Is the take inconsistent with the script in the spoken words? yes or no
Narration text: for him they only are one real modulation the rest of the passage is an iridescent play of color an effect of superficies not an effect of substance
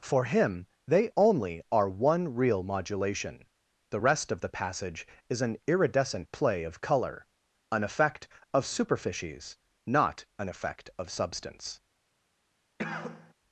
no